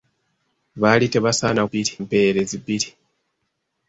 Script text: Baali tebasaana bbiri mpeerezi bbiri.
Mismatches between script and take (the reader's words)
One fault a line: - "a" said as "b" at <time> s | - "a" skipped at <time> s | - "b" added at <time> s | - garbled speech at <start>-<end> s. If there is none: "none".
none